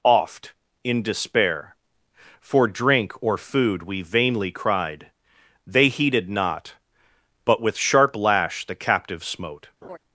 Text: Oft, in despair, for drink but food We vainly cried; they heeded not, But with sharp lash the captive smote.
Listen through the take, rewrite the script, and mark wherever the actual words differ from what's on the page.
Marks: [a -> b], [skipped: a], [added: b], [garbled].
Oft, in despair, for drink [but -> or] food We vainly cried; they heeded not, But with sharp lash the captive smote.